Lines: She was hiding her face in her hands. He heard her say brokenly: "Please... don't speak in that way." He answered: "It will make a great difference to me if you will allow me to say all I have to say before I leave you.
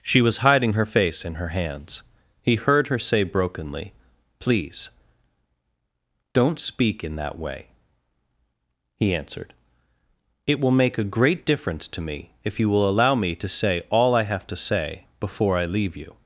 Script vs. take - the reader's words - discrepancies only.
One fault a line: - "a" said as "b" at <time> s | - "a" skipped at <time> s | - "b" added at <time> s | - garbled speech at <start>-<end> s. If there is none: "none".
none